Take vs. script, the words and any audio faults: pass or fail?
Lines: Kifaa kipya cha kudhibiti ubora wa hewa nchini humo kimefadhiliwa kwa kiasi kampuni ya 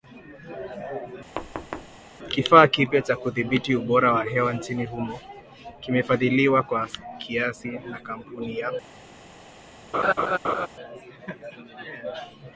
fail